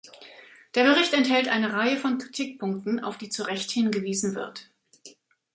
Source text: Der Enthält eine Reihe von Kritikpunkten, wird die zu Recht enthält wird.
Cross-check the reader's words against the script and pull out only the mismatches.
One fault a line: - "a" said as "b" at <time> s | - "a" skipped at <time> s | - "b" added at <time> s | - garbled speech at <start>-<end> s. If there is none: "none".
- "Bericht" added at 0.8 s
- "wird" said as "auf" at 3.0 s
- "enthält" said as "hingewiesen" at 3.7 s